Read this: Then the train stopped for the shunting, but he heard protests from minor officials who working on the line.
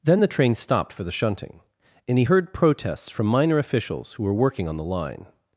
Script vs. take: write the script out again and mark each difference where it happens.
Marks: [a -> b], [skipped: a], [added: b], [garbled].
Then the train stopped for the shunting, [but -> and] he heard protests from minor officials who [added: were] working on the line.